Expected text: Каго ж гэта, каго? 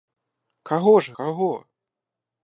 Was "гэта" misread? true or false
true